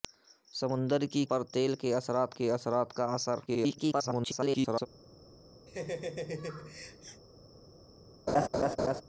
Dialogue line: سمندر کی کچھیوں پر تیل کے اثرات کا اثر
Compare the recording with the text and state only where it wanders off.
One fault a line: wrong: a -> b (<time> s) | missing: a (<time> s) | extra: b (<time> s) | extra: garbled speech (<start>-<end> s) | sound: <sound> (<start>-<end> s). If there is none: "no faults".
missing: کچھیوں (1.2 s)
extra: کے اثرات (2.3 s)
extra: garbled speech (3.5-4.9 s)
sound: laugh (5.7-7.2 s)
sound: laugh (8.3-9.0 s)